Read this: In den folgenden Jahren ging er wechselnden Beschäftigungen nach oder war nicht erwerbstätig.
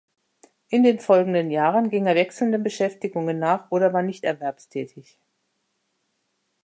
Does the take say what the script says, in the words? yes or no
yes